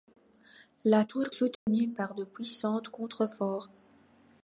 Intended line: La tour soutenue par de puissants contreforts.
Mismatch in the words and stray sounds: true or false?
true